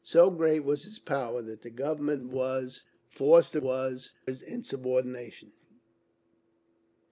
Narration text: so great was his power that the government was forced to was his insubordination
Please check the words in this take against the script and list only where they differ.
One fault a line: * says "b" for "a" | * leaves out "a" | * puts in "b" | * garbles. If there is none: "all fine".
all fine